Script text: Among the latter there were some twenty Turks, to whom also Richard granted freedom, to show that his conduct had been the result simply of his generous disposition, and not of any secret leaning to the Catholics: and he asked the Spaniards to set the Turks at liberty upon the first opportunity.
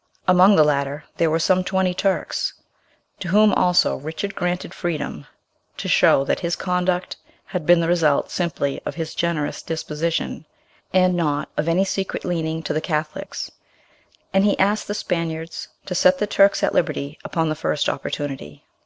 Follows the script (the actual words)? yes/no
yes